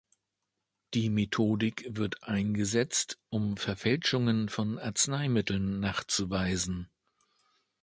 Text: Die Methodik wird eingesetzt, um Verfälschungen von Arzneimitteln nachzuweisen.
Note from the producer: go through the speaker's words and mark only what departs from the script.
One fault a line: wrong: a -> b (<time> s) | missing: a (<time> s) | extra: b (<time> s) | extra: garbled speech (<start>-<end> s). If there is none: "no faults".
no faults